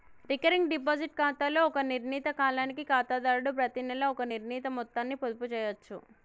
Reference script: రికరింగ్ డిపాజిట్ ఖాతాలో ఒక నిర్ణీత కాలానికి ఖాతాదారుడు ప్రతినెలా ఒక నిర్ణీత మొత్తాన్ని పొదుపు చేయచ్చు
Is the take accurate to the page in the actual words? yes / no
yes